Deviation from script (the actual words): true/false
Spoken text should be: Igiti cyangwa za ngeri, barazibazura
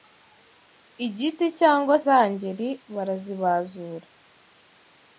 false